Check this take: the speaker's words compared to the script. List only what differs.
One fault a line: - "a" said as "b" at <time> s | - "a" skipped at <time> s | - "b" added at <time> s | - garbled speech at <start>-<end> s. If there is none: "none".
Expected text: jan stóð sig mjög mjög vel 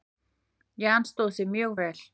- "mjög" skipped at 1.8 s